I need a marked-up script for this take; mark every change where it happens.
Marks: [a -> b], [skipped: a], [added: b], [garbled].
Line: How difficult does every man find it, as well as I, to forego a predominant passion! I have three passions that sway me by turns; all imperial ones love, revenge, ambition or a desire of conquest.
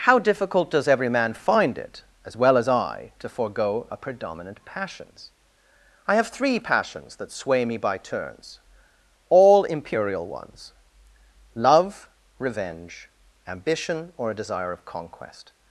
How difficult does every man find it, as well as I, to forego a predominant [passion! -> passions] I have three passions that sway me by turns; all imperial ones love, revenge, ambition or a desire of conquest.